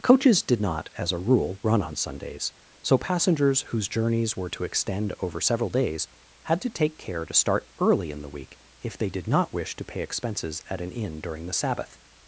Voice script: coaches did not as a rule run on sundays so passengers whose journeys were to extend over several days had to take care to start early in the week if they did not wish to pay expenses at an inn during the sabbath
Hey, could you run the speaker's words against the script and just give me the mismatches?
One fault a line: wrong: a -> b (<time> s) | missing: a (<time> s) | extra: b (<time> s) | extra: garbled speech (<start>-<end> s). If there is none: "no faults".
no faults